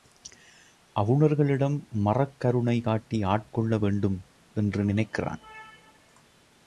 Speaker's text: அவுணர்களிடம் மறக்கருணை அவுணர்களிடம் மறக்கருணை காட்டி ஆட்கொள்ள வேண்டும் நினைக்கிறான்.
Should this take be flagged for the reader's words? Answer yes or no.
yes